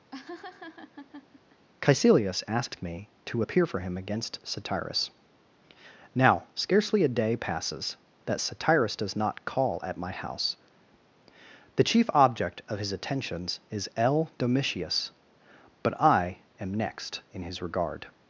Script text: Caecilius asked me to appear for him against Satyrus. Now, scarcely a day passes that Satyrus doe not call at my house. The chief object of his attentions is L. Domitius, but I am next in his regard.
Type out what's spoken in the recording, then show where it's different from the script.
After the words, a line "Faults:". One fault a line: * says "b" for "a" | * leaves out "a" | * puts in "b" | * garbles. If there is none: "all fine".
Caecilius asked me to appear for him against Satyrus. Now, scarcely a day passes that Satyrus does not call at my house. The chief object of his attentions is L. Domitius, but I am next in his regard.
Faults:
* says "does" for "doe"